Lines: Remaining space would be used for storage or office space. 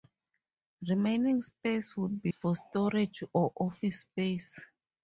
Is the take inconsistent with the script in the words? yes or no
yes